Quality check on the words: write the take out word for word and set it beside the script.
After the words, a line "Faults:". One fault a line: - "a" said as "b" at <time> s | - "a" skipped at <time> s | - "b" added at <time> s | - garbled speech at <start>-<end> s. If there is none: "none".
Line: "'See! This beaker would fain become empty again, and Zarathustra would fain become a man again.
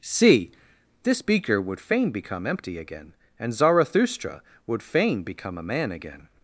"'See! This beaker would fain become empty again, and Zarathustra would fain become a man again.
Faults:
none